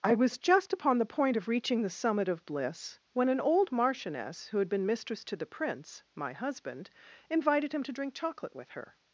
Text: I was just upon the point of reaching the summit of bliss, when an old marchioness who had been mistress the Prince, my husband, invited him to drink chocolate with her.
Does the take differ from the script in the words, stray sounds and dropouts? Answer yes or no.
yes